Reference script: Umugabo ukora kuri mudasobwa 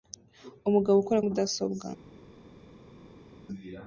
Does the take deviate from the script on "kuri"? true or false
true